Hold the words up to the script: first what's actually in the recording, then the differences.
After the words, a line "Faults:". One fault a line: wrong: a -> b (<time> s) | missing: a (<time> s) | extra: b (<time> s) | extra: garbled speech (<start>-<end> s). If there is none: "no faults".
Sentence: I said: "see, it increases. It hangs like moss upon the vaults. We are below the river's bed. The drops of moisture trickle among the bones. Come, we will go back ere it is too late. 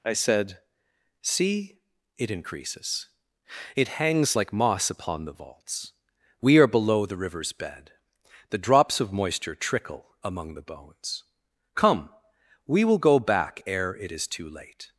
I said: "see, it increases. It hangs like moss upon the vaults. We are below the river's bed. The drops of moisture trickle among the bones. Come, we will go back ere it is too late.
Faults:
no faults